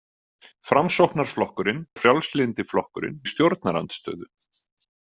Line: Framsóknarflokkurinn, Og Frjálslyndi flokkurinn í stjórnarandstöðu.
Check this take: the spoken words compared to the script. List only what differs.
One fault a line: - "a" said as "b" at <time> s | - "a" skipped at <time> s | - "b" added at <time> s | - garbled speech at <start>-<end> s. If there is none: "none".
none